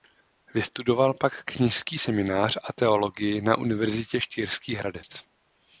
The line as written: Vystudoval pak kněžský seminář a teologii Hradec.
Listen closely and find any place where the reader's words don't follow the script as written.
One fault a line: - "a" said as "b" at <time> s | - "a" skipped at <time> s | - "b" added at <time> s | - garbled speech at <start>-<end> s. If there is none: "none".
- "na Univerzitě Štýrský" added at 3.4 s